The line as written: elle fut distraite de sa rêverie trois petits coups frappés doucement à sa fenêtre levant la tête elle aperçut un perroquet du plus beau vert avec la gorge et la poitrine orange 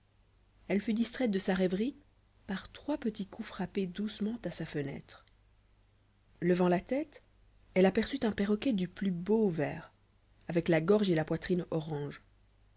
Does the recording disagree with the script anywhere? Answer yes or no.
yes